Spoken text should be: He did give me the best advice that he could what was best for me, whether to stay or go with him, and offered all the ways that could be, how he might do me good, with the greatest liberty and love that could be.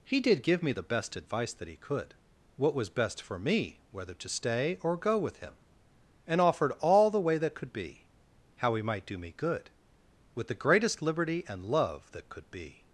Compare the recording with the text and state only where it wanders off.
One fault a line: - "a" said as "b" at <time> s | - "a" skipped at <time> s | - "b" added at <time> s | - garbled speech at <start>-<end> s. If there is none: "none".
- "ways" said as "way" at 7.2 s